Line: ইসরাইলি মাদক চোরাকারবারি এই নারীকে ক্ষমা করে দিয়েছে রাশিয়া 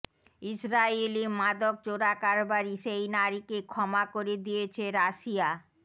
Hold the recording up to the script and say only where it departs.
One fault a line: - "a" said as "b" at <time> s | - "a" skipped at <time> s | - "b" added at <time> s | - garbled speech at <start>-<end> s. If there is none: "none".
- "এই" said as "সেই" at 2.8 s